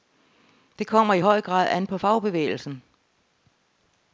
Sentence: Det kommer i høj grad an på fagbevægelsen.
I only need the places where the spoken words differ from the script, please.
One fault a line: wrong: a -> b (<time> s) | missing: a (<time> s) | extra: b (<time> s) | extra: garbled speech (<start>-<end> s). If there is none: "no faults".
no faults